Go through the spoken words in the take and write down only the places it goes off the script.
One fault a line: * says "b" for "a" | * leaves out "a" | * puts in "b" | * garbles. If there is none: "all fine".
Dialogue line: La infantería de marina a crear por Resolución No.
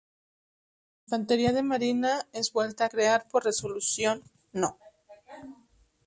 * puts in "es vuelta"